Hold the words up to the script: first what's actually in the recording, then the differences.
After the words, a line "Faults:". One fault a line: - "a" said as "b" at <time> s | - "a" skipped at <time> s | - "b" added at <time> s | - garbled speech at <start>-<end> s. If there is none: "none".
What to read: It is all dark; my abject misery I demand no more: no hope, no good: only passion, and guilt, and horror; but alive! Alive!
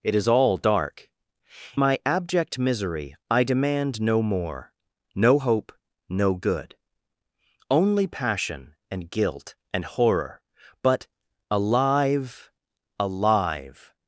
It is all dark; my abject misery I demand no more: no hope, no good: only passion, and guilt, and horror; but alive! Alive!
Faults:
none